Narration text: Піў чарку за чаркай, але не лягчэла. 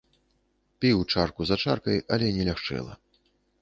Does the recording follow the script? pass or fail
pass